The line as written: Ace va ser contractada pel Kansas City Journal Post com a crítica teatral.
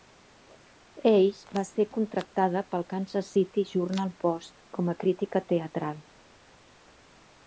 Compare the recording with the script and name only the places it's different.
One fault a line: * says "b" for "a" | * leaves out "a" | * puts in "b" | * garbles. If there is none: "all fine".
all fine